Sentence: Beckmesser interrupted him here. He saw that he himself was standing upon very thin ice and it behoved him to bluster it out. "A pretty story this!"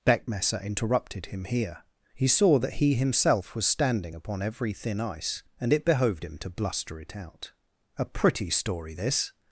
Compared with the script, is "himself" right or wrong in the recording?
right